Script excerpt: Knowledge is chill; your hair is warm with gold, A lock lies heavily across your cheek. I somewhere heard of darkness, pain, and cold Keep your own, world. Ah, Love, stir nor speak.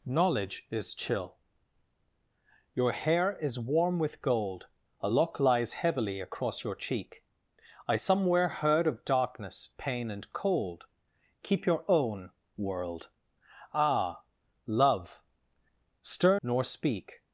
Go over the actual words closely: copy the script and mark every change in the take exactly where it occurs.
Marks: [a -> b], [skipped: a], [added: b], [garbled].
Knowledge is chill; your hair is warm with gold, A lock lies heavily across your cheek. I somewhere heard of darkness, pain, and cold Keep your own, world. Ah, Love, stir nor speak.